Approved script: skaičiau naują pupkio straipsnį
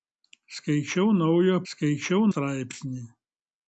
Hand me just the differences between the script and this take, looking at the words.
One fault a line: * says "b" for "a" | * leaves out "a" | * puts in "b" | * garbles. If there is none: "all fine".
* says "skaičiau" for "pupkio"